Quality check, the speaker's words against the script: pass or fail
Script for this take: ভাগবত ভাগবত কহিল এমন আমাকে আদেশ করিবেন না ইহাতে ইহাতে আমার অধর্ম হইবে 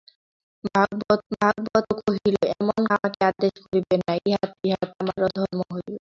pass